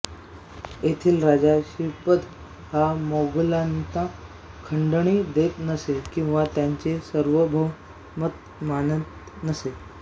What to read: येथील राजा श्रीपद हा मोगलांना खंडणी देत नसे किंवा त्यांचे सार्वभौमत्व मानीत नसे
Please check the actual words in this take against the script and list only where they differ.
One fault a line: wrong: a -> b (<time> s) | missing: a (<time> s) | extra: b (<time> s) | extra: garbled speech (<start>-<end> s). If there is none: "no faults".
no faults